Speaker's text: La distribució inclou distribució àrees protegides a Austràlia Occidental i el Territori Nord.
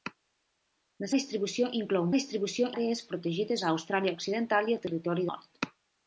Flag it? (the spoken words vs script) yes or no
no